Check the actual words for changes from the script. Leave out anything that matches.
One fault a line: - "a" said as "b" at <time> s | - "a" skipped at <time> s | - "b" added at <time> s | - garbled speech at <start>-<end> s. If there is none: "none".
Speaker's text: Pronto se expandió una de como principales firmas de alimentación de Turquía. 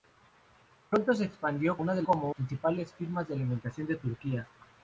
none